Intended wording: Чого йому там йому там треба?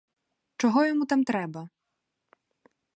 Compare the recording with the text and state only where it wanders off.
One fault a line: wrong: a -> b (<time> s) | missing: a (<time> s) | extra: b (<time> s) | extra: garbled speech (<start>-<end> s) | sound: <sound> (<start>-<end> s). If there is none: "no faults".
missing: йому там (1.2 s)